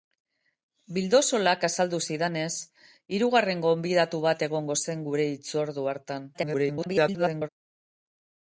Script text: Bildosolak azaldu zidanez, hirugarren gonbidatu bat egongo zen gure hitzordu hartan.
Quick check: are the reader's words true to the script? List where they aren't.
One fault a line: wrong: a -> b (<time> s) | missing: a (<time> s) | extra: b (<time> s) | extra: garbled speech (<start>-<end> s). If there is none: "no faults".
extra: garbled speech (6.3-7.5 s)